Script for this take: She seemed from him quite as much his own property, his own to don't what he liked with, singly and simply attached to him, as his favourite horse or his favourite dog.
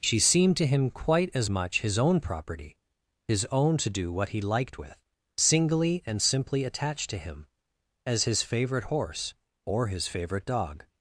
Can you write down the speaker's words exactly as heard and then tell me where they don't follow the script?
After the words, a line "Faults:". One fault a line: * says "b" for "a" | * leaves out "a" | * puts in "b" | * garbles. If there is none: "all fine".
She seemed to him quite as much his own property, his own to do what he liked with, singly and simply attached to him, as his favourite horse or his favourite dog.
Faults:
* says "to" for "from"
* says "do" for "don't"